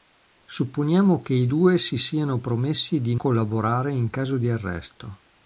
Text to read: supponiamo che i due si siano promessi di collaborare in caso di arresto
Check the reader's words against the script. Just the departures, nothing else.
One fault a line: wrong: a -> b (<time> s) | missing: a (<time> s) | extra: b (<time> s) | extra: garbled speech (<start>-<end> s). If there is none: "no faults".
no faults